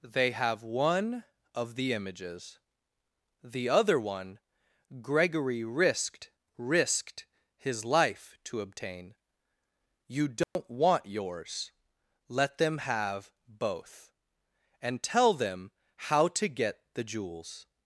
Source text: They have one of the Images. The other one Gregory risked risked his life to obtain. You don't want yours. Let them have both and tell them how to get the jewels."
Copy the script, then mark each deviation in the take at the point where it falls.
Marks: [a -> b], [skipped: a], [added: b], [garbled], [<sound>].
They have one of the Images. The other one Gregory risked risked his life to obtain. You don't [dropout] want yours. Let them have both and tell them how to get the jewels."